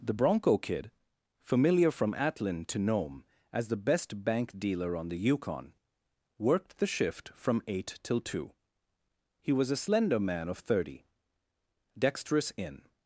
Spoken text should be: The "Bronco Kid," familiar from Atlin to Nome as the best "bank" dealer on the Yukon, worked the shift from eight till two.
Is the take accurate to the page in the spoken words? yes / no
no